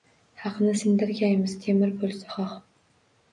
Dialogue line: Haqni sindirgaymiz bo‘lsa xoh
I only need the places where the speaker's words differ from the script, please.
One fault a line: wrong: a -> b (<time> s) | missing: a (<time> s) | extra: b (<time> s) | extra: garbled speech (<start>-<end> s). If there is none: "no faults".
extra: temir (1.7 s)